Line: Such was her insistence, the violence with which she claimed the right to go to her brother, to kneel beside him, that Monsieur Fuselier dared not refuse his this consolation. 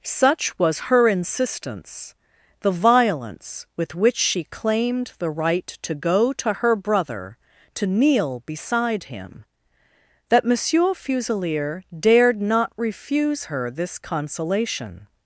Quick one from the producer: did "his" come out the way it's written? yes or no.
no